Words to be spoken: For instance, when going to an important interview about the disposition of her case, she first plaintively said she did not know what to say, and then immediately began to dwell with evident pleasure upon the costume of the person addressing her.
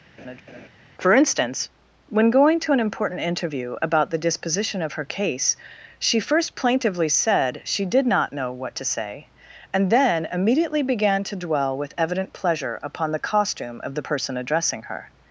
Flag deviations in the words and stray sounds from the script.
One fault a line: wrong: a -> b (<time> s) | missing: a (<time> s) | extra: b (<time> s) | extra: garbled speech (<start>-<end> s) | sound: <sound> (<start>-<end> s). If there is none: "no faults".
sound: laugh (0.2-0.7 s)